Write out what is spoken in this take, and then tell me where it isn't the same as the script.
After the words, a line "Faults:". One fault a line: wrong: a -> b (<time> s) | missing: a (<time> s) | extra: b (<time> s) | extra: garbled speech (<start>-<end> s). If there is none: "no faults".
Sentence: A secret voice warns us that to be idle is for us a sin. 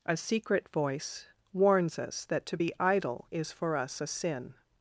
A secret voice warns us that to be idle is for us a sin.
Faults:
no faults